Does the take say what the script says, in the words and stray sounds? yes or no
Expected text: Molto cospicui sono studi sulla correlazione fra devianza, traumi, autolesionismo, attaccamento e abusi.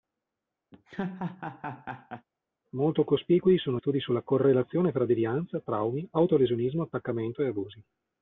no